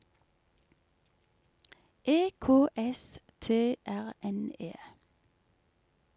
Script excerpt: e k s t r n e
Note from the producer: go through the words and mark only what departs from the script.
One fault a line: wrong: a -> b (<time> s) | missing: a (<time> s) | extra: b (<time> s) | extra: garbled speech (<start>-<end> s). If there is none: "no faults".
no faults